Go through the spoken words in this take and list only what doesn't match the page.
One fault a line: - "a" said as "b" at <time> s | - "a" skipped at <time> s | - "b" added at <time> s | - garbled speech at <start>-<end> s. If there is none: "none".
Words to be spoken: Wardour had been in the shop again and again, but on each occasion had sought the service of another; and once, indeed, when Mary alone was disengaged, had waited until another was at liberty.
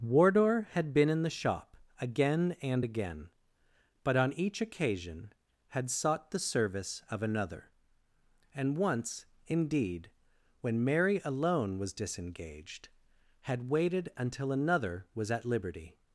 none